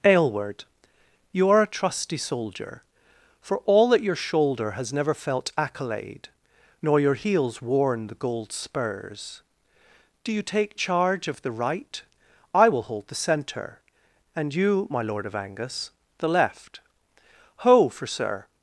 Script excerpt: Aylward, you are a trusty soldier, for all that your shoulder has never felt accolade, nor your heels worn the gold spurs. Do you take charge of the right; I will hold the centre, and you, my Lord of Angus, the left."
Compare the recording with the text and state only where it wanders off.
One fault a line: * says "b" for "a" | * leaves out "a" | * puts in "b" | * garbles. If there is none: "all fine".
* puts in "Ho for Sir"